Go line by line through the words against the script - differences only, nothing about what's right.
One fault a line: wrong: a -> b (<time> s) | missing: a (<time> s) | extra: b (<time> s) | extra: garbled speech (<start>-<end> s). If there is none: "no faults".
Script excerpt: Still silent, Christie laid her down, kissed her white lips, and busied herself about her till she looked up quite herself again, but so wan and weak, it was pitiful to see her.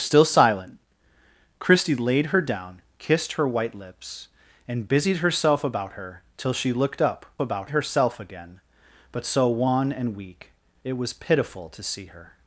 wrong: quite -> about (7.4 s)